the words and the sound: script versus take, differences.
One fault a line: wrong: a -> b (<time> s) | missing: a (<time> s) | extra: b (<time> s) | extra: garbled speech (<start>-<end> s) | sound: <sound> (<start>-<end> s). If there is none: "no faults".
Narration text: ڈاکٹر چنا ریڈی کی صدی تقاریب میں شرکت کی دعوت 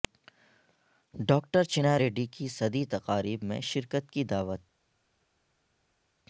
no faults